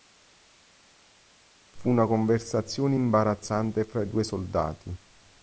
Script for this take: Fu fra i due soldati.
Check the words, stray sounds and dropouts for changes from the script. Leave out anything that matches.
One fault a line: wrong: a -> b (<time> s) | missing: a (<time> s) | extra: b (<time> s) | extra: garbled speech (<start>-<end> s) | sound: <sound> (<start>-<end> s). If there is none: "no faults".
extra: una conversazione imbarazzante (1.9 s)